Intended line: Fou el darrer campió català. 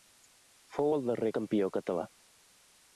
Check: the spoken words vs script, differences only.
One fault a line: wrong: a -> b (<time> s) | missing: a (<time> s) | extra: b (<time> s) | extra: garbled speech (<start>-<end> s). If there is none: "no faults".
no faults